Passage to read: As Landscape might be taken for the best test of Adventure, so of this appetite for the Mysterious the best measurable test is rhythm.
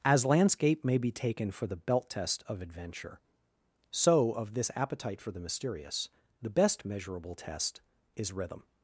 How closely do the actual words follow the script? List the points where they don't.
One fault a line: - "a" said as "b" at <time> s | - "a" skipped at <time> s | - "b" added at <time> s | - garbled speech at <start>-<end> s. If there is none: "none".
- "might" said as "may" at 0.8 s
- "best" said as "belt" at 1.8 s